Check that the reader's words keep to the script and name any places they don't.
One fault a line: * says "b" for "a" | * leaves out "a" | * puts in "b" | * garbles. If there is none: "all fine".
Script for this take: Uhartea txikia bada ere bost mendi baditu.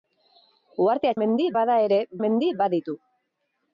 * says "mendi" for "txikia"
* leaves out "bost"